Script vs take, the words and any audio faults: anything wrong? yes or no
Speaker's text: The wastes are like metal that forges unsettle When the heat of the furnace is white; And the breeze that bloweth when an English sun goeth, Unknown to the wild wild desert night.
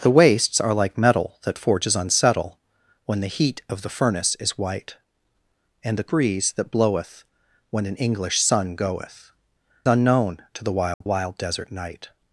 yes